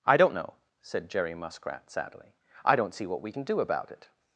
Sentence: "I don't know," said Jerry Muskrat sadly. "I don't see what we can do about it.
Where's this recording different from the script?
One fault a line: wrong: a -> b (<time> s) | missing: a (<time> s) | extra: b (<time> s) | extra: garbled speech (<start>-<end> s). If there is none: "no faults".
no faults